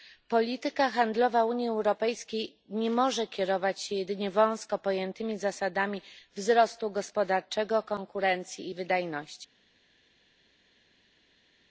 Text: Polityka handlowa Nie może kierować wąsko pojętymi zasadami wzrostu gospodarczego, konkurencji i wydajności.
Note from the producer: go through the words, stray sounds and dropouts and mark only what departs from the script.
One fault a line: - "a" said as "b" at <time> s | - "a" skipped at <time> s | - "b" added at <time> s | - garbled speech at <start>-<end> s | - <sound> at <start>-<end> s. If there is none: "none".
- "Unii Europejskiej" added at 1.4 s
- "się jedynie" added at 3.8 s